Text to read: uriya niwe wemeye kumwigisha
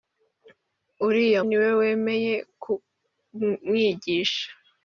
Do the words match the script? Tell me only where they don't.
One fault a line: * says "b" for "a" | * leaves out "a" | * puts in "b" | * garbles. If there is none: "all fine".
all fine